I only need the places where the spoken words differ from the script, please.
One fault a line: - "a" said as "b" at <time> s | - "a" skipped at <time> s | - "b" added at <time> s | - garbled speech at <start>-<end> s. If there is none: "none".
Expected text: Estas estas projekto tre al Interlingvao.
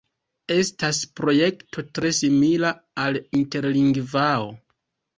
- "estas" skipped at 1.0 s
- "simila" added at 2.2 s